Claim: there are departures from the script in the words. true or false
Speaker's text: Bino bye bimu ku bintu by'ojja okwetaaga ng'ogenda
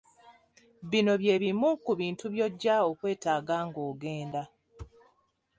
false